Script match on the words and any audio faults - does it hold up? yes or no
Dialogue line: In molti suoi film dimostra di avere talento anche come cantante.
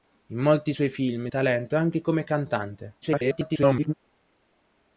no